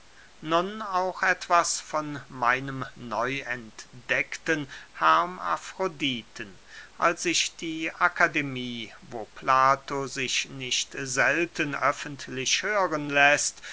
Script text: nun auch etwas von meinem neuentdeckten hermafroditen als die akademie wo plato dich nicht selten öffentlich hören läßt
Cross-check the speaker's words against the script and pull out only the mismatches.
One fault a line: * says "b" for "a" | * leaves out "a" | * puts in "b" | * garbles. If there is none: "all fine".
* puts in "ich"
* says "sich" for "dich"